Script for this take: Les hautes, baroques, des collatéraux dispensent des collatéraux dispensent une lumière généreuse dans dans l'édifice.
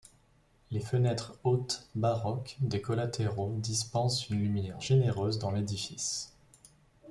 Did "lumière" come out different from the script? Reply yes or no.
no